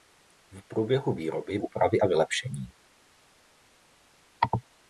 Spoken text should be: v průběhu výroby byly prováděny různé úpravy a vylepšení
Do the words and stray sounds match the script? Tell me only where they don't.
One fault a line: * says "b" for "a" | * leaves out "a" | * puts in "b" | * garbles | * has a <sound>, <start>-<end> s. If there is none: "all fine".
* leaves out "byly prováděny různé"